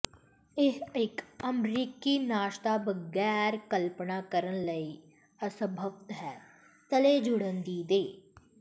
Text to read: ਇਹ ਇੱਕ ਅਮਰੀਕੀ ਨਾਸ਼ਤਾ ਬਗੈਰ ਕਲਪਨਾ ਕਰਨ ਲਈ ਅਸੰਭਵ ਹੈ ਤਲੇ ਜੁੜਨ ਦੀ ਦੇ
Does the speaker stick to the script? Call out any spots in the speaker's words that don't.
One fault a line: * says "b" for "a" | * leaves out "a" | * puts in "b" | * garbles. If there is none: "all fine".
all fine